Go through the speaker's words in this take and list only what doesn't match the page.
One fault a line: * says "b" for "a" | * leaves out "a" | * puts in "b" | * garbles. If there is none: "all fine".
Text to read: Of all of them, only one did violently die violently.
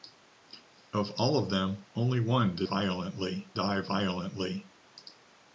all fine